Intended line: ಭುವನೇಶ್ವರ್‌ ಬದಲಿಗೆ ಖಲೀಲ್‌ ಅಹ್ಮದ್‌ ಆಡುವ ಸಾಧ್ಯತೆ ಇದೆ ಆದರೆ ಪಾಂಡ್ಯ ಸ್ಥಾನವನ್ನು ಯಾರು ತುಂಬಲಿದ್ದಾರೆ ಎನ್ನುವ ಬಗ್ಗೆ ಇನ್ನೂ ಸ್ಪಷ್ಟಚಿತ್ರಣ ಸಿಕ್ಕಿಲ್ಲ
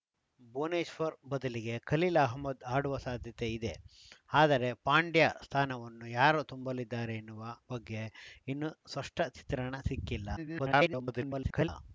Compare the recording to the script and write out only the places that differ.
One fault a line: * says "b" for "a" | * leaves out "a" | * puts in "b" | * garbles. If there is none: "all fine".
* garbles